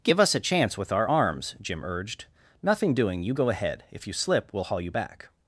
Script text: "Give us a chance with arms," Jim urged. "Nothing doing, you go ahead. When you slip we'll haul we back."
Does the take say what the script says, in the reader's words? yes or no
no